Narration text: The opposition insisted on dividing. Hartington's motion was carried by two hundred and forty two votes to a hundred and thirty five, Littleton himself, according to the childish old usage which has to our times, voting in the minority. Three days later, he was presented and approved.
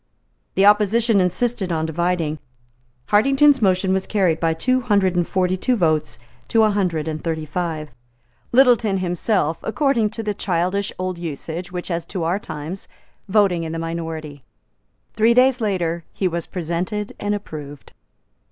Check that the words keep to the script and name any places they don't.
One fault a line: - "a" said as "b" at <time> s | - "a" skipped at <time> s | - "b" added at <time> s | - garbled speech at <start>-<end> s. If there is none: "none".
none